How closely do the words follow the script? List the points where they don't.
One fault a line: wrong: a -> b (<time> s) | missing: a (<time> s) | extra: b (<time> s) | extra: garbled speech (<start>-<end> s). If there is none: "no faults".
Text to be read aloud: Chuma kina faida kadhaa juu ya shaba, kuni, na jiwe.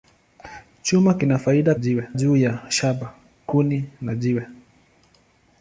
wrong: kadhaa -> jiwe (1.8 s)